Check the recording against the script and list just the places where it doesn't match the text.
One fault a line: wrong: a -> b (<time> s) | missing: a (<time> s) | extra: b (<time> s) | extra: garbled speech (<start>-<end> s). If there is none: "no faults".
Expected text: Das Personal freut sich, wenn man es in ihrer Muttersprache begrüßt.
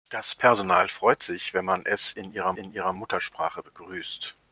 extra: in ihrer (2.5 s)